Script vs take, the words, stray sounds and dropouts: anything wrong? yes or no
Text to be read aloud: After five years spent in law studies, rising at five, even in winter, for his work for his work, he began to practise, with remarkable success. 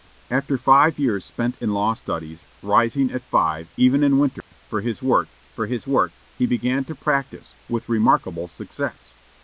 yes